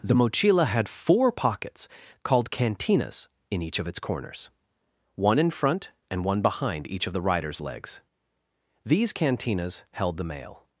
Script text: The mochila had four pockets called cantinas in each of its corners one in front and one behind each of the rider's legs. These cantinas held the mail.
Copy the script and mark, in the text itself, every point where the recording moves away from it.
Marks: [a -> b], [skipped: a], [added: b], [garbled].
The mochila had four pockets called cantinas in each of its corners one in front and one behind each of the rider's legs. These cantinas held the mail.